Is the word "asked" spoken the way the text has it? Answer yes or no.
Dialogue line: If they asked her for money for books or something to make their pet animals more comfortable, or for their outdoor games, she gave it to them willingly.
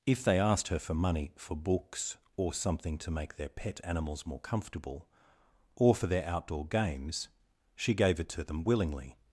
yes